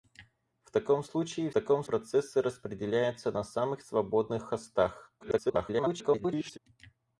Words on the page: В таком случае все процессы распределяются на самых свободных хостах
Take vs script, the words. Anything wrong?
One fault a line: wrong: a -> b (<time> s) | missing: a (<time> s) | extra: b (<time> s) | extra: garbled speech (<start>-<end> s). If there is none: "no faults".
wrong: все -> таком (1.5 s)
extra: garbled speech (5.2-6.6 s)